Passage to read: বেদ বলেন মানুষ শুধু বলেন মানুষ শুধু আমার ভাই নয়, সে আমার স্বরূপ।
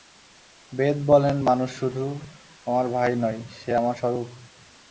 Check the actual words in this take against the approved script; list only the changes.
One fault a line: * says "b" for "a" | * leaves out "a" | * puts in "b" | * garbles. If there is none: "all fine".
* leaves out "বলেন মানুষ শুধু"